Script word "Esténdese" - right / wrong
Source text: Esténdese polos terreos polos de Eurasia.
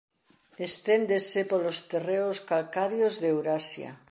right